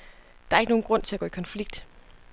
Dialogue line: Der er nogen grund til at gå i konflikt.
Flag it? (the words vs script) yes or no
yes